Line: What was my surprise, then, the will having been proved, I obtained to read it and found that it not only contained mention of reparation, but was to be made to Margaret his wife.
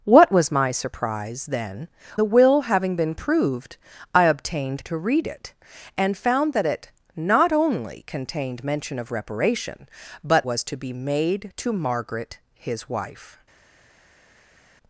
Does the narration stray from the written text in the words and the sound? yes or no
no